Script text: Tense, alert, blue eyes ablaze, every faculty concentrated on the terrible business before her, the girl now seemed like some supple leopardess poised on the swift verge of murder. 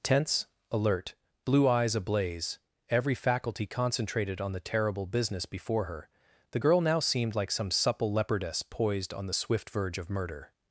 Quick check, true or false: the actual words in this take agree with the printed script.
true